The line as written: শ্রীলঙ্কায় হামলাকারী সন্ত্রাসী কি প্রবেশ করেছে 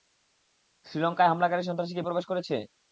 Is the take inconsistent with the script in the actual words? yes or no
no